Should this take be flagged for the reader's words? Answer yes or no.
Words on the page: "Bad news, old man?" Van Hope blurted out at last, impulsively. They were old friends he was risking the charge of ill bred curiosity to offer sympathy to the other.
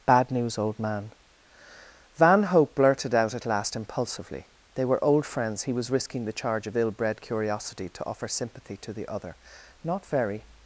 yes